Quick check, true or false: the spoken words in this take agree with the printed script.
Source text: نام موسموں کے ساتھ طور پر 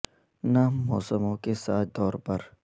true